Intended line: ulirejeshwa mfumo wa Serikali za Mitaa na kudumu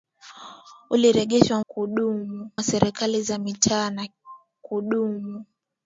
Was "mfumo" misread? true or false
true